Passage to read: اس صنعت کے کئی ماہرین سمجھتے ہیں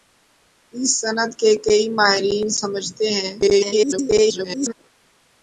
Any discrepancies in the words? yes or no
yes